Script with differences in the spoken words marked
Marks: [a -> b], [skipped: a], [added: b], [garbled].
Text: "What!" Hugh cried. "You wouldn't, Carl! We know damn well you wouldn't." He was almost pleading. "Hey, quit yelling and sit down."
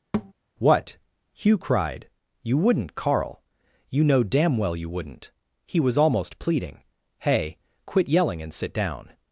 "What!" Hugh cried. "You wouldn't, Carl! [We -> You] know damn well you wouldn't." He was almost pleading. "Hey, quit yelling and sit down."